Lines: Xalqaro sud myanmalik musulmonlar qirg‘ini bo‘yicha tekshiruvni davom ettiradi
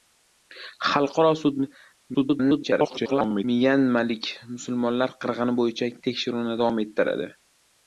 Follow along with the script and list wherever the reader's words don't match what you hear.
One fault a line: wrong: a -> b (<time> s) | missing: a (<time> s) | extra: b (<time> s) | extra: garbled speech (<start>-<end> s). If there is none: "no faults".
extra: garbled speech (2.1-3.4 s)